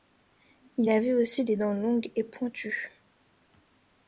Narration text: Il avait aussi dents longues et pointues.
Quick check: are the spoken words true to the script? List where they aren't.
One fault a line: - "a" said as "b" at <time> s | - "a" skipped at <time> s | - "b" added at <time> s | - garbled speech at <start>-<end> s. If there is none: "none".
- "des" added at 1.4 s